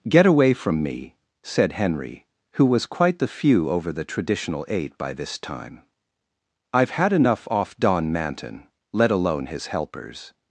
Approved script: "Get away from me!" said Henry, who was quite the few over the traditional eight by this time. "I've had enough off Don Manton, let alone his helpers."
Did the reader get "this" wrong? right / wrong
right